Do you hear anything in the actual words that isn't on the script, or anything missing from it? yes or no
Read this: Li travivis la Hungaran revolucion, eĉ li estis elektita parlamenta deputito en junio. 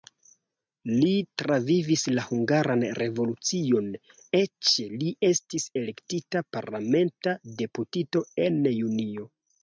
no